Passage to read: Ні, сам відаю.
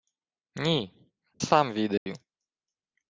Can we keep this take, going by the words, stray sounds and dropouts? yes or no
no